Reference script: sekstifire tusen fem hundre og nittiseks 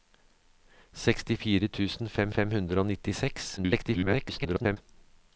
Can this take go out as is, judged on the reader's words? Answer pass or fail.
fail